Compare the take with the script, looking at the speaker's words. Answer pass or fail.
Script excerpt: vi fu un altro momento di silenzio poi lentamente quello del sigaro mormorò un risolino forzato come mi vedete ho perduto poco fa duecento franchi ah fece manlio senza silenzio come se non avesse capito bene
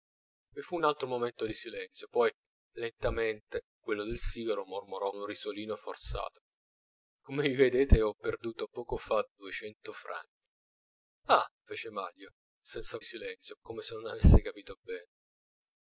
pass